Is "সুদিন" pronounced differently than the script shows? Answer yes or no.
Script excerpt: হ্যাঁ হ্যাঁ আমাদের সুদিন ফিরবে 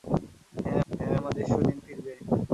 no